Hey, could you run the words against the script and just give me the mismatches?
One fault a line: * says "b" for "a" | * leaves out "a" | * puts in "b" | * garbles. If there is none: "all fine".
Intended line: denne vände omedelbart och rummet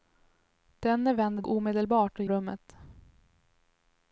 all fine